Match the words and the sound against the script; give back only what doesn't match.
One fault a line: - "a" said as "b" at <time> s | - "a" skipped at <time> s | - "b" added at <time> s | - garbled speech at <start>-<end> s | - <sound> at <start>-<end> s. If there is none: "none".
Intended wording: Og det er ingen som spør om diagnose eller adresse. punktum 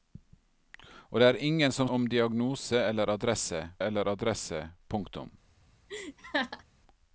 - "spør" skipped at 1.9 s
- "eller adresse" added at 3.8 s
- laugh at 5.9-6.6 s